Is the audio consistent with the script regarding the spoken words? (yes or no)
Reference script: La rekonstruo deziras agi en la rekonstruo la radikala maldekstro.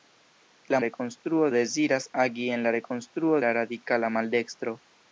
yes